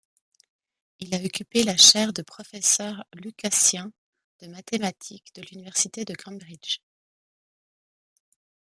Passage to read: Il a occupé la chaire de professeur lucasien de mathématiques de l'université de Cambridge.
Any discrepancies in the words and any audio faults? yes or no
no